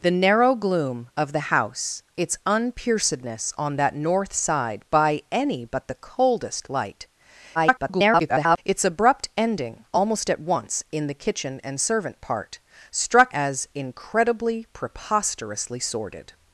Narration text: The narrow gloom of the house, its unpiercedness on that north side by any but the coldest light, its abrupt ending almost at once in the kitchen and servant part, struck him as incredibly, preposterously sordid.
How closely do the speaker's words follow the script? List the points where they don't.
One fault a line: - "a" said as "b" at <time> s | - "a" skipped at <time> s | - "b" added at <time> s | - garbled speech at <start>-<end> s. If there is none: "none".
- garbled speech at 7.5-8.6 s
- "him" skipped at 13.3 s